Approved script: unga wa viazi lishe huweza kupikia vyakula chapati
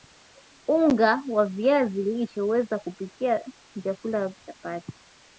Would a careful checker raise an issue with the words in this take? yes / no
no